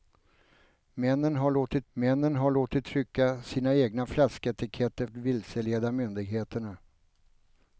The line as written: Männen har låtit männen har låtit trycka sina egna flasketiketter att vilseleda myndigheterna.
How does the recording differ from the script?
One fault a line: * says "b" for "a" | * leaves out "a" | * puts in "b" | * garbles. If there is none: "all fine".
all fine